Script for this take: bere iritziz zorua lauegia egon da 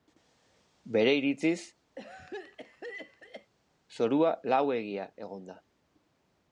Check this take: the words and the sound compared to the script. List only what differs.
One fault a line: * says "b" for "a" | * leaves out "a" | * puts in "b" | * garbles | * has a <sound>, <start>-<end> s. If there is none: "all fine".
* has a cough, 2.0-3.5 s